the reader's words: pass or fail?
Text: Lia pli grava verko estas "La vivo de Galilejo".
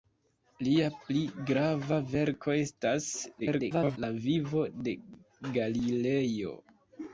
fail